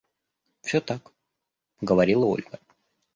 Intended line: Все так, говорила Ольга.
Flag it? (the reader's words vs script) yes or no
no